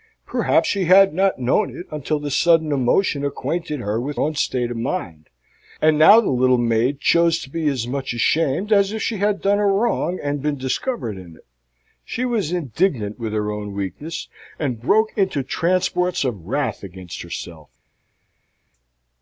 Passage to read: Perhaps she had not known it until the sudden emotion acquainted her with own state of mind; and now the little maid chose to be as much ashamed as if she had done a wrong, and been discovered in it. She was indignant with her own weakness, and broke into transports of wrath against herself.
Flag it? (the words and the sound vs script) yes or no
no